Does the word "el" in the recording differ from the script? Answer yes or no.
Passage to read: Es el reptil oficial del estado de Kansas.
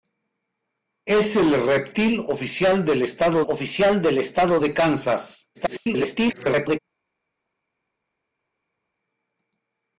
no